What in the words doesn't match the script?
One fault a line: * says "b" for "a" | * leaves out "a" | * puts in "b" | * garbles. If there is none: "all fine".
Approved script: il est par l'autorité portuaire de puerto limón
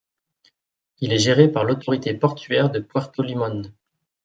* puts in "géré"